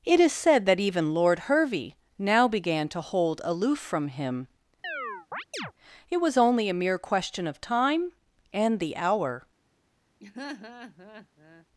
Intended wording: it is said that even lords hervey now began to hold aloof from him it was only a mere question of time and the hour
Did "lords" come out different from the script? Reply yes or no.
yes